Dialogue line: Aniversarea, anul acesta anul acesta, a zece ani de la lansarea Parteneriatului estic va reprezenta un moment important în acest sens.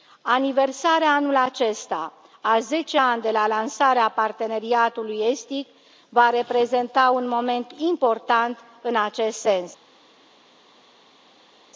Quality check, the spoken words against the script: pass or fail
fail